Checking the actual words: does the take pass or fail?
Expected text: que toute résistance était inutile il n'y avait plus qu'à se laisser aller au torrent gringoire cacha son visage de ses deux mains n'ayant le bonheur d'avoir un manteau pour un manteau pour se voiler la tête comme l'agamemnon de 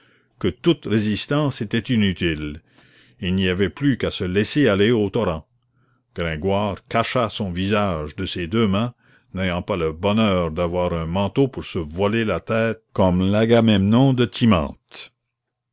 fail